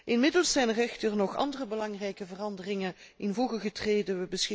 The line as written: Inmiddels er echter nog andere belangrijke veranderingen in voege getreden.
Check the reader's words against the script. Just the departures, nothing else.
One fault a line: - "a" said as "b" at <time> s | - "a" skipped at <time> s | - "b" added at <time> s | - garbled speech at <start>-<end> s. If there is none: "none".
- "zijn" added at 0.5 s